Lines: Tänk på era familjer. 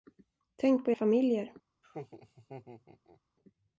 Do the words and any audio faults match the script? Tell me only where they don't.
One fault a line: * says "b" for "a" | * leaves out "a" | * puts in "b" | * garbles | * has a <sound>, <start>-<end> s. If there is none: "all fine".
* leaves out "era"
* has a laugh, 1.8-3.2 s